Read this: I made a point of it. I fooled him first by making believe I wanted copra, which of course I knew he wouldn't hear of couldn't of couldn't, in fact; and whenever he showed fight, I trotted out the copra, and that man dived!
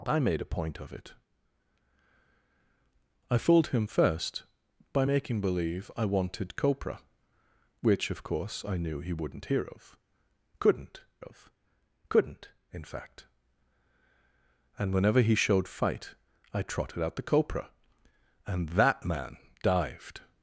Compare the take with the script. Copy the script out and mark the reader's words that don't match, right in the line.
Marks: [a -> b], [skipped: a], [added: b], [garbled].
I made a point of it. I fooled him first by making believe I wanted copra, which of course I knew he wouldn't hear of couldn't of couldn't, in fact; and whenever he showed fight, I trotted out the copra, and that man dived!